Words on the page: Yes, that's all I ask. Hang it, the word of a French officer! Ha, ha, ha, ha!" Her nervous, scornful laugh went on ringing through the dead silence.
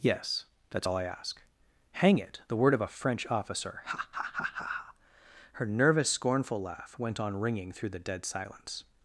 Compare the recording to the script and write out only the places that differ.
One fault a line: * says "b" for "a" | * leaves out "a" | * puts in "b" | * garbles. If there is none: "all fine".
all fine